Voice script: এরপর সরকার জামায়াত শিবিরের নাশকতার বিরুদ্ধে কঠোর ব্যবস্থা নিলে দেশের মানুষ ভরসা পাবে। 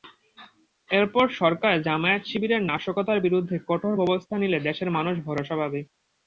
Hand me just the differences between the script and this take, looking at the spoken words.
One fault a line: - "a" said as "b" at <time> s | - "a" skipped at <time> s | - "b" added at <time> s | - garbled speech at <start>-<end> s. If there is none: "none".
none